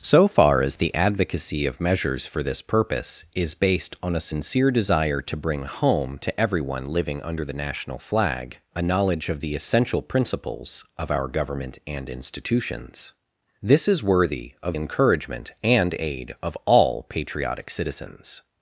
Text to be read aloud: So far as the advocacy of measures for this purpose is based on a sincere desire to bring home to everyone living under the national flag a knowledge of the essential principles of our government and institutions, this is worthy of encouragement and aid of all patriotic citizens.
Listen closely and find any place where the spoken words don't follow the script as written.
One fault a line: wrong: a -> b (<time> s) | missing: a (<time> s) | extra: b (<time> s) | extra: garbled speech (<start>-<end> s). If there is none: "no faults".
no faults